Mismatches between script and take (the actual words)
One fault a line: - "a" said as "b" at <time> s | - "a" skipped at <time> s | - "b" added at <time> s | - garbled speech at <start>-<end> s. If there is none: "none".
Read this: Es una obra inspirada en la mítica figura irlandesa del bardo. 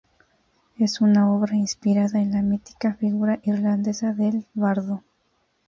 none